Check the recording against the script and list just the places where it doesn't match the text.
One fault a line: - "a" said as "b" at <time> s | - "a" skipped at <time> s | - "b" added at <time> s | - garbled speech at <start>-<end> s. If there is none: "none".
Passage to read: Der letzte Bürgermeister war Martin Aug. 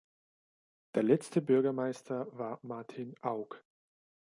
none